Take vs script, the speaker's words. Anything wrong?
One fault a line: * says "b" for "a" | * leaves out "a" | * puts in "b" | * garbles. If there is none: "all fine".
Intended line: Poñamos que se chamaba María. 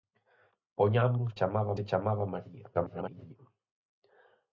* says "chamaba" for "que"
* garbles